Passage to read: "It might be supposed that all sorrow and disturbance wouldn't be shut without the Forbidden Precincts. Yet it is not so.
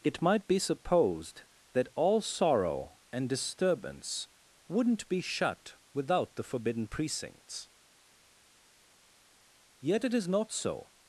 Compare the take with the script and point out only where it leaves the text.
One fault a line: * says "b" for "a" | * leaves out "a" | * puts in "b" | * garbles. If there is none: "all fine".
all fine